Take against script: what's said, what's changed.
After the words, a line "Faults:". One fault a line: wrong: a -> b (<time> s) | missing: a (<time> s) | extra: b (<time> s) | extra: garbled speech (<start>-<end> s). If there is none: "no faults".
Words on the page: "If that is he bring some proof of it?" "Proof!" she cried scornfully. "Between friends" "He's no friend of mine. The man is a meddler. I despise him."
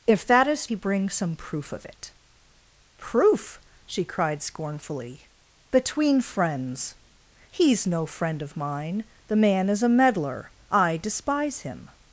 "If that is he bring some proof of it?" "Proof!" she cried scornfully. "Between friends" "He's no friend of mine. The man is a meddler. I despise him."
Faults:
no faults